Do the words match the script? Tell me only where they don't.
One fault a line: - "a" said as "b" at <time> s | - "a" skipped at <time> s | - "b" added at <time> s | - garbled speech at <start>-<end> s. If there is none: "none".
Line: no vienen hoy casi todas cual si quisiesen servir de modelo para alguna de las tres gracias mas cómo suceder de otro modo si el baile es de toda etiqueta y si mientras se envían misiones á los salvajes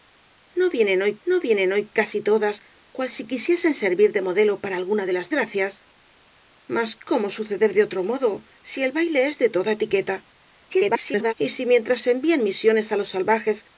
- "no vienen hoy" added at 1.3 s
- "tres" skipped at 5.3 s
- garbled speech at 10.7-11.3 s